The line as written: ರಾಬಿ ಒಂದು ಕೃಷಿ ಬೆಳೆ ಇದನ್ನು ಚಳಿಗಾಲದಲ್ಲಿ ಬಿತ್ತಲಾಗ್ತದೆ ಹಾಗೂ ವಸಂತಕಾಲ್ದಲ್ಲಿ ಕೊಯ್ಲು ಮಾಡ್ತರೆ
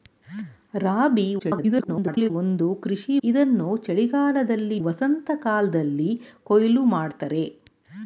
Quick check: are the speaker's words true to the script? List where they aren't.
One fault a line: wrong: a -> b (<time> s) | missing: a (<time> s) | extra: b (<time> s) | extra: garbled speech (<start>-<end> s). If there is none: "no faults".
extra: garbled speech (1.4-2.3 s)
missing: ಬೆಳೆ (3.1 s)
missing: ಬಿತ್ತಲಾಗ್ತದೆ ಹಾಗೂ (4.8 s)